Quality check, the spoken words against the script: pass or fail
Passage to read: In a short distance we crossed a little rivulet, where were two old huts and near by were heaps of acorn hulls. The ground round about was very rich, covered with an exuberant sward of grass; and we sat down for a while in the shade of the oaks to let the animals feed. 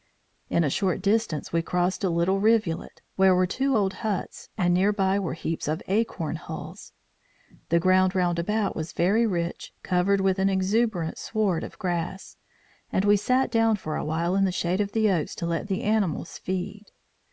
pass